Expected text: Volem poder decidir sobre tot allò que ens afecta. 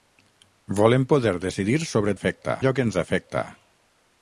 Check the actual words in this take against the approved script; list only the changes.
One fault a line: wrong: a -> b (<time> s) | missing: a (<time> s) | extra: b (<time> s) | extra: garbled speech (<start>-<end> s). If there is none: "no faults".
wrong: tot -> afecta (2.1 s)